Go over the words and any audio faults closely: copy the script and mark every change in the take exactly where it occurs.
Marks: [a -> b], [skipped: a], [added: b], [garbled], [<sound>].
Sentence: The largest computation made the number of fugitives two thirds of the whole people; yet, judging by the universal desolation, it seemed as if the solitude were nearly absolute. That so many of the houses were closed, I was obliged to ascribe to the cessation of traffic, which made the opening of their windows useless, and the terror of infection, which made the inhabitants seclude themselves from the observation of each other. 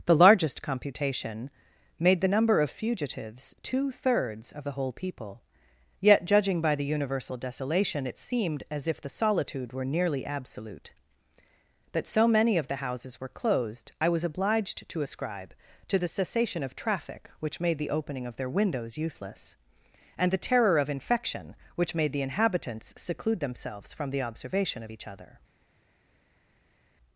The largest computation made the number of fugitives two thirds of the whole people; yet, judging by the universal desolation, it seemed as if the solitude were nearly absolute. That so many of the houses were closed, I was obliged to ascribe to the cessation of traffic, which made the opening of their windows useless, and the terror of infection, which made the inhabitants seclude themselves from the observation of each other.